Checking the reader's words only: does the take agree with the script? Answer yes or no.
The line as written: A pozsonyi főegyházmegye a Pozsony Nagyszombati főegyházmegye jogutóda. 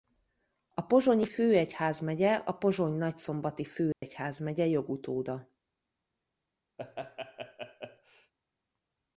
yes